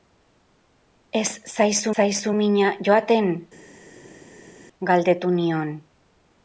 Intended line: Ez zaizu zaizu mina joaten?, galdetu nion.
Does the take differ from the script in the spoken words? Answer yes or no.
no